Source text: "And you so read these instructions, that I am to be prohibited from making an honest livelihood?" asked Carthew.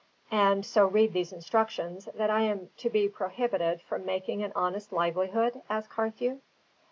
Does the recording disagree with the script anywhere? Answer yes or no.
yes